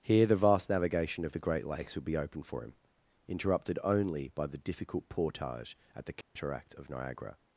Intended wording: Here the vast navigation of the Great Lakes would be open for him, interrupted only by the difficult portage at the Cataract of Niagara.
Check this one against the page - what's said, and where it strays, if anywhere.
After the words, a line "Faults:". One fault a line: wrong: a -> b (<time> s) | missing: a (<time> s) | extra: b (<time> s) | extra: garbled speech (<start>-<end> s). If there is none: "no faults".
Here the vast navigation of the Great Lakes would be open for him, interrupted only by the difficult portage at the Cataract of Niagara.
Faults:
no faults